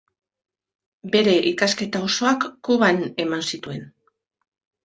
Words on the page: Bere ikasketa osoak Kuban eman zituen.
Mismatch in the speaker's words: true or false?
false